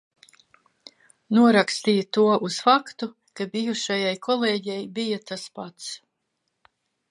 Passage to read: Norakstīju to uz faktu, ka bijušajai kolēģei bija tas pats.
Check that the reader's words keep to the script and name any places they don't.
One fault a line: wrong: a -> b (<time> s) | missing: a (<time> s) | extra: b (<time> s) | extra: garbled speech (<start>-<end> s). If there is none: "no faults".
no faults